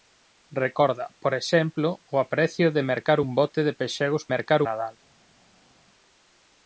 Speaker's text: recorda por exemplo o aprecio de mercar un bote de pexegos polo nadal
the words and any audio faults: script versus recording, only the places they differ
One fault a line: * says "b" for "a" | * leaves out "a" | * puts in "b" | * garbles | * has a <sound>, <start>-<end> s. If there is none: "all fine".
* says "mercar" for "polo"